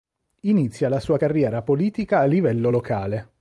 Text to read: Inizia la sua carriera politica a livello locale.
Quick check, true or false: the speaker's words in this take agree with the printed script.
true